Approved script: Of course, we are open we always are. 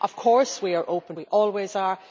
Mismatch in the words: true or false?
false